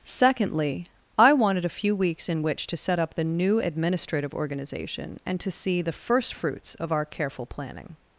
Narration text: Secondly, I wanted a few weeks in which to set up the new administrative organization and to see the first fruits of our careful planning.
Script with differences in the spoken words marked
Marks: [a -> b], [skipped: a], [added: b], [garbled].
Secondly, I wanted a few weeks in which to set up the new administrative organization and to see the first fruits of our careful planning.